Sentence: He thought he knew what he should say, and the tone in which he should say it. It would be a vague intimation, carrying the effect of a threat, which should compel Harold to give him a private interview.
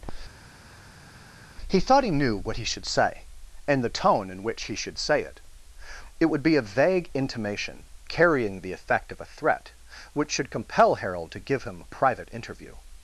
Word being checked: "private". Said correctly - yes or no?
yes